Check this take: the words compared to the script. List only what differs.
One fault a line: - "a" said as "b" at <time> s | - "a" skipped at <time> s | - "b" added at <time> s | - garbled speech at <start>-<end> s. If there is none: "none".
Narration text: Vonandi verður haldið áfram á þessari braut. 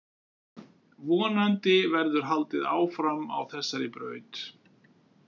none